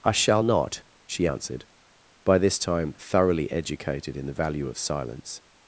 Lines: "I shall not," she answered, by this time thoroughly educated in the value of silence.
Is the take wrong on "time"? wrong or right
right